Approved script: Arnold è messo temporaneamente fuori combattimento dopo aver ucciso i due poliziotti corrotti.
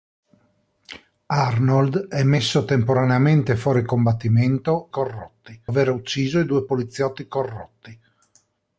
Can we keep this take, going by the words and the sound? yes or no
no